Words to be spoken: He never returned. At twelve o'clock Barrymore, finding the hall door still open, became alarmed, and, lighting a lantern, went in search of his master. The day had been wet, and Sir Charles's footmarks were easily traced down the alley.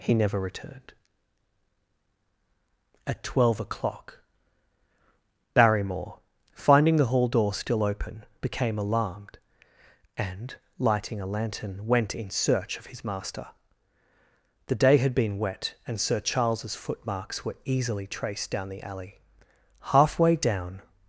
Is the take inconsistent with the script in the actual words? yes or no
yes